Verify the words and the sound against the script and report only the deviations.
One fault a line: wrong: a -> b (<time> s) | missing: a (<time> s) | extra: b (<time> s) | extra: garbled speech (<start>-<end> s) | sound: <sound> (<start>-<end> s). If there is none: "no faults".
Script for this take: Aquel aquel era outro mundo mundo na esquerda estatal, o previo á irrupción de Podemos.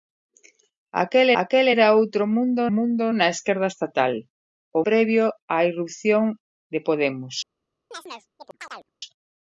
sound: chirp (7.9-8.9 s)